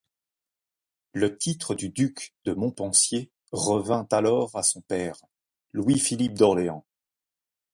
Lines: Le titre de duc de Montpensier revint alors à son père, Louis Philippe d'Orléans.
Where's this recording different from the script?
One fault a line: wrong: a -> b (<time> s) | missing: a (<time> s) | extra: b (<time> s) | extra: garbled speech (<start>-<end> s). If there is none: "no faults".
no faults